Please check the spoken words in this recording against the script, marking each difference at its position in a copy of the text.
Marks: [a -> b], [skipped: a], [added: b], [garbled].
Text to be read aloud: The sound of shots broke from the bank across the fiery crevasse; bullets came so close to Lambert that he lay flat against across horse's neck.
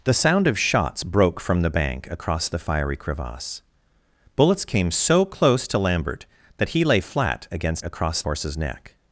The sound of shots broke from the bank across the fiery crevasse; bullets came so close to Lambert that he lay flat against across horse's neck.